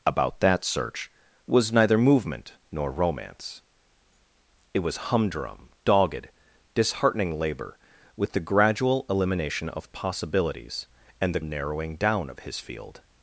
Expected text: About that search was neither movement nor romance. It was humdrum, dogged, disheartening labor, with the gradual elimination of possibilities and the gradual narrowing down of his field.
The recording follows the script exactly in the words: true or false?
false